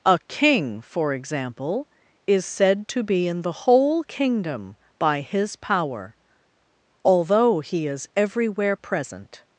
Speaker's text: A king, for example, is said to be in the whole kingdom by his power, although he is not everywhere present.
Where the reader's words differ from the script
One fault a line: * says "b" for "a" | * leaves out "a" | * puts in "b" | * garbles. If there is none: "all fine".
* leaves out "not"